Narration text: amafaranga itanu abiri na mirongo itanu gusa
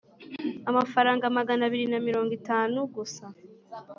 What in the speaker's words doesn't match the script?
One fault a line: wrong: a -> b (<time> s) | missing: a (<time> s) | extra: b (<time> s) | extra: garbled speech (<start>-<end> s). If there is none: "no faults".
wrong: itanu -> magana (1.4 s)